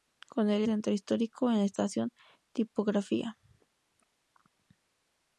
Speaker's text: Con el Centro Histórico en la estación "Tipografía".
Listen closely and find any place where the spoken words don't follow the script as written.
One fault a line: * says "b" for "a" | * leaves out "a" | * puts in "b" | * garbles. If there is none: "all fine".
all fine